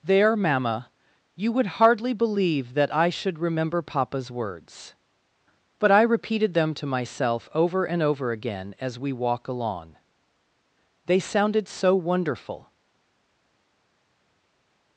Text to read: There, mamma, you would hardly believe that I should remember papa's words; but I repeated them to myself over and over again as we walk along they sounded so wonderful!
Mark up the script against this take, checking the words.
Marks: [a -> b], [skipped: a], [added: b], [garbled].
There, mamma, you would hardly believe that I should remember papa's words; but I repeated them to myself over and over again as we walk along they sounded so wonderful!